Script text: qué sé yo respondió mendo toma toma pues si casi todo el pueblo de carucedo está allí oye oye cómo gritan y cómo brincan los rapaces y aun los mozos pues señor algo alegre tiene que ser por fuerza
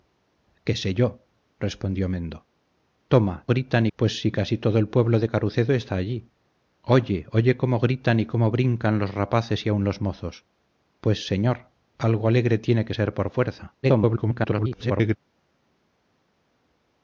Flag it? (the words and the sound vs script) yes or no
yes